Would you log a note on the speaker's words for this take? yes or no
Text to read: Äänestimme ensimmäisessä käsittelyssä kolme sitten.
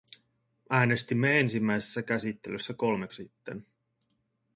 no